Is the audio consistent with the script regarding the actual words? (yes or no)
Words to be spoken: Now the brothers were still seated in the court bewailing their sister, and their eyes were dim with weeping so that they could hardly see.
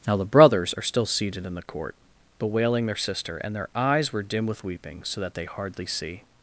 no